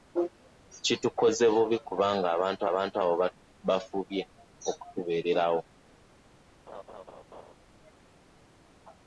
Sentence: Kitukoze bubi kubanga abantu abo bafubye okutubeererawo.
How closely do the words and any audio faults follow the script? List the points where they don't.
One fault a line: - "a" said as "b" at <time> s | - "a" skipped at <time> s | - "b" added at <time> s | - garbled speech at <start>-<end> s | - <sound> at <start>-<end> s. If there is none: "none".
- "abantu" added at 2.7 s
- laugh at 6.7-7.5 s